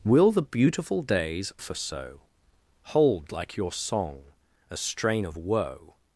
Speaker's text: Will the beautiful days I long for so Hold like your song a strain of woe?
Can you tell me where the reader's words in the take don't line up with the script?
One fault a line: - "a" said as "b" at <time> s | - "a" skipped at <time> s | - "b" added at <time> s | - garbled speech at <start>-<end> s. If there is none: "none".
- "I long" skipped at 1.5 s